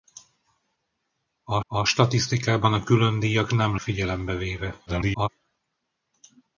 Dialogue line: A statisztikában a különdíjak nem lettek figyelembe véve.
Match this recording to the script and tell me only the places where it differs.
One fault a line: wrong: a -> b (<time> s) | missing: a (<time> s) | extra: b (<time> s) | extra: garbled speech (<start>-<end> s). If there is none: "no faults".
extra: a (1.7 s)
missing: lettek (3.8 s)
extra: garbled speech (4.9-5.3 s)